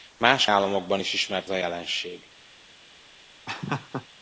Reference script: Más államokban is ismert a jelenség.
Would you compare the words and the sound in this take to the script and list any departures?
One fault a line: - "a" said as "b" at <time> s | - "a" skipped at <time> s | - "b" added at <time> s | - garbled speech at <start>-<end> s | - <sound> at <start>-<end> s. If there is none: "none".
- laugh at 3.5-4.1 s